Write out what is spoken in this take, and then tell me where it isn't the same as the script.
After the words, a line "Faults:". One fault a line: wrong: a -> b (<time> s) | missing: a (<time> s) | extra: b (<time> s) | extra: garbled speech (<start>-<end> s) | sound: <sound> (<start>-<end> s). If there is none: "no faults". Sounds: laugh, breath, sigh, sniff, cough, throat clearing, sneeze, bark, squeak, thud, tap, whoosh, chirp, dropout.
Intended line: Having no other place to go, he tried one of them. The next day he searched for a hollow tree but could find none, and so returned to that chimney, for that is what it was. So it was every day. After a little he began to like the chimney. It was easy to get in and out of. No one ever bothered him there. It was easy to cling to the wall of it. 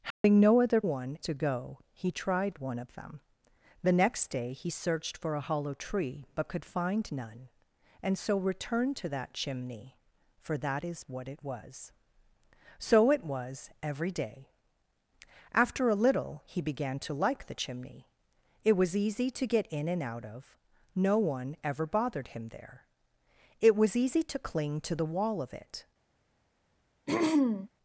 Having no other one to go, he tried one of them. The next day he searched for a hollow tree but could find none, and so returned to that chimney, for that is what it was. So it was every day. After a little he began to like the chimney. It was easy to get in and out of. No one ever bothered him there. It was easy to cling to the wall of it.
Faults:
sound: dropout (0.1-0.2 s)
wrong: place -> one (0.8 s)
sound: throat clearing (27.1-27.7 s)